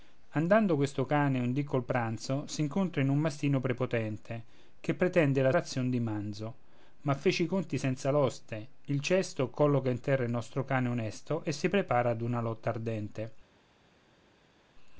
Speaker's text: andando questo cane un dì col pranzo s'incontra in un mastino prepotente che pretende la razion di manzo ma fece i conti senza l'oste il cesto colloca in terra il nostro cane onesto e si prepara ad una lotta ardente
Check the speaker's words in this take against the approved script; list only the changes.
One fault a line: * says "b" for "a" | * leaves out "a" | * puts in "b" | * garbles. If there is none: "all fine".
all fine